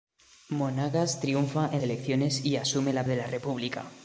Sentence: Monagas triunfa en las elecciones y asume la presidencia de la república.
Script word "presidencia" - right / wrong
wrong